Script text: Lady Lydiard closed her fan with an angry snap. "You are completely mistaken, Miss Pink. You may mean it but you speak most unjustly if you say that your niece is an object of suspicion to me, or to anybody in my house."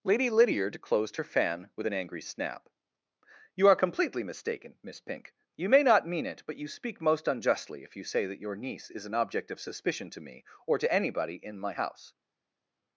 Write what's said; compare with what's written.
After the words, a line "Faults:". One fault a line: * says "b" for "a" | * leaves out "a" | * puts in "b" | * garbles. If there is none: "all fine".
Lady Lydiard closed her fan with an angry snap. "You are completely mistaken, Miss Pink. You may not mean it but you speak most unjustly if you say that your niece is an object of suspicion to me, or to anybody in my house."
Faults:
* puts in "not"